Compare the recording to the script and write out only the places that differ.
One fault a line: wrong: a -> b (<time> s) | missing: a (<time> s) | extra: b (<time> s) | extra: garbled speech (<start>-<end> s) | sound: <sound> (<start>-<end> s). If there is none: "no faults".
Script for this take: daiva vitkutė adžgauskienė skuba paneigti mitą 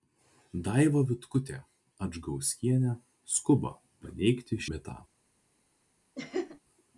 sound: laugh (6.1-6.6 s)